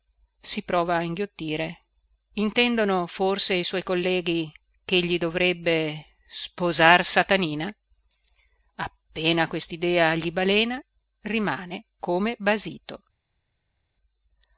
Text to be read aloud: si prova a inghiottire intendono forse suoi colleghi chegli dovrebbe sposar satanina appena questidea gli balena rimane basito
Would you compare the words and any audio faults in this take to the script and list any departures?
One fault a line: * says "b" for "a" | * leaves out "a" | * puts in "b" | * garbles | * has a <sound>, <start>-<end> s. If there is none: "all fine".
* puts in "i"
* puts in "come"